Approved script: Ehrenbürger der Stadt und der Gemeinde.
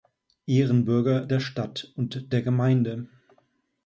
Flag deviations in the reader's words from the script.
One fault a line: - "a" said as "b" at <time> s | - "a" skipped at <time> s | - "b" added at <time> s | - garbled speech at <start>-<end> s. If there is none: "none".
none